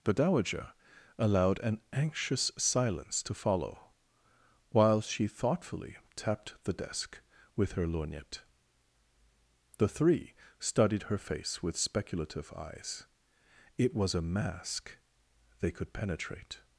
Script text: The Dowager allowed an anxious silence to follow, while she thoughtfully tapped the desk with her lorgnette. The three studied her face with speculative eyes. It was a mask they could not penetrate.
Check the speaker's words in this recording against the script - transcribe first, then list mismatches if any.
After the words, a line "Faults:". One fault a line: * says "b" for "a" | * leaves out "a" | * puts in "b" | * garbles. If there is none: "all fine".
The Dowager allowed an anxious silence to follow, while she thoughtfully tapped the desk with her lorgnette. The three studied her face with speculative eyes. It was a mask they could penetrate.
Faults:
* leaves out "not"